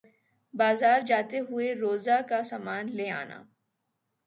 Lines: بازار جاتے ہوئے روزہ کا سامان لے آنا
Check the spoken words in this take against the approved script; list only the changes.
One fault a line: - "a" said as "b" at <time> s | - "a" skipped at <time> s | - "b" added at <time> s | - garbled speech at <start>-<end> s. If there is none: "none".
none